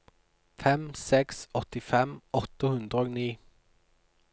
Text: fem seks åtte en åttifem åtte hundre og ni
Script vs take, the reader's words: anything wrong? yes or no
yes